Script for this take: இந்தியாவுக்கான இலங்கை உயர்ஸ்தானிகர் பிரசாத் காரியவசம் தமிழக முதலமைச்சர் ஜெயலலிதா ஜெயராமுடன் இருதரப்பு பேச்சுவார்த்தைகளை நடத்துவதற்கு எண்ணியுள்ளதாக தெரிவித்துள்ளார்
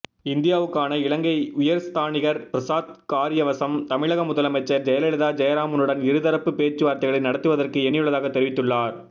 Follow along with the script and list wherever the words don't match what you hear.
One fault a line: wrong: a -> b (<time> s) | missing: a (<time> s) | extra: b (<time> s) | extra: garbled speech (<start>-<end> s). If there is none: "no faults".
no faults